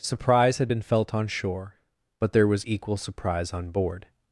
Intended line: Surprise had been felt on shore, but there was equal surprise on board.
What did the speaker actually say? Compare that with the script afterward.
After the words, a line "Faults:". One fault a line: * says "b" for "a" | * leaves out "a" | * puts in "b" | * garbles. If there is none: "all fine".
Surprise had been felt on shore, but there was equal surprise on board.
Faults:
all fine